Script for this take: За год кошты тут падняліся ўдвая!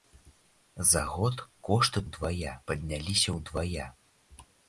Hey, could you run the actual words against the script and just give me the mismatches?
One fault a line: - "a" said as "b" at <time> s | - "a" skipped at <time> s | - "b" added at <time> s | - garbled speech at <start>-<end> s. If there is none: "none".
- "тут" said as "ўдвая" at 2.1 s